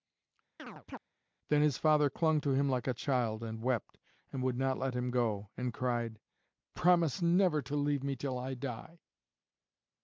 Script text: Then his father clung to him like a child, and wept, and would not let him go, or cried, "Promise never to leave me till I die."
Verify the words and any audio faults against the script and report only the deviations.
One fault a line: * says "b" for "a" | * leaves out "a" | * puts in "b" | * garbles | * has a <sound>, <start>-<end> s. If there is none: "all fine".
* has a chirp, 0.6-1.0 s
* says "and" for "or"